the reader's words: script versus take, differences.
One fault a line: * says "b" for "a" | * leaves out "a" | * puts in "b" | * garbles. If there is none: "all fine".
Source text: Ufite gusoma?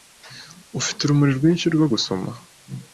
* puts in "urumuri rwinshi rwo"